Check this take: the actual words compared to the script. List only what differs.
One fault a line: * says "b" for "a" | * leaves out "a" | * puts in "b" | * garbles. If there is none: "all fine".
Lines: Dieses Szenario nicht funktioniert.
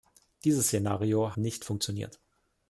all fine